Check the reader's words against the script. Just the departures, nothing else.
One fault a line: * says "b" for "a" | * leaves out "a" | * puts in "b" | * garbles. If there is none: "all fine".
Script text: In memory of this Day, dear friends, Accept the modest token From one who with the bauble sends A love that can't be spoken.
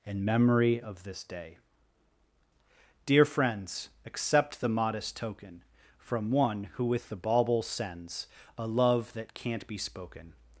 all fine